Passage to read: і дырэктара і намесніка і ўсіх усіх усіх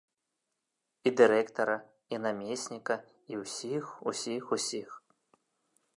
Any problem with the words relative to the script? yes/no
no